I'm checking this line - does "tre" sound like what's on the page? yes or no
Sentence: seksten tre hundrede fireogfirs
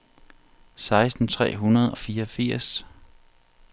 yes